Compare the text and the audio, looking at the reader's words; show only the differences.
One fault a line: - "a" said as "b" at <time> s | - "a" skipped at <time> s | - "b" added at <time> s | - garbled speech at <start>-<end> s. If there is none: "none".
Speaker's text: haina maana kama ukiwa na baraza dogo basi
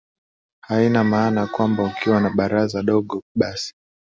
- "kama" said as "kwamba" at 1.5 s